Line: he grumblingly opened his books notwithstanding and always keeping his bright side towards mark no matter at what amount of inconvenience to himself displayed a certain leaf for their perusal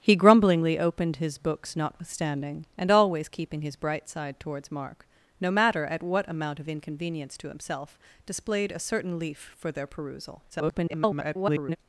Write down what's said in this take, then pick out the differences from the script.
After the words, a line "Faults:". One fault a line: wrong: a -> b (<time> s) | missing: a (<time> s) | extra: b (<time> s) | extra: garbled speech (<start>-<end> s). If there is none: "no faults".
he grumblingly opened his books notwithstanding and always keeping his bright side towards mark no matter at what amount of inconvenience to himself displayed a certain leaf for their perusal [garbled]
Faults:
extra: garbled speech (10.5-11.8 s)